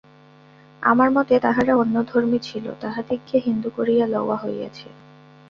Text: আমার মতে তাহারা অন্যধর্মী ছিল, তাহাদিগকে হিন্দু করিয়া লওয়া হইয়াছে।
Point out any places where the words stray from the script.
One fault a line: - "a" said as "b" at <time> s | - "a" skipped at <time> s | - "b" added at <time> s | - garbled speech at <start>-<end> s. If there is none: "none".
none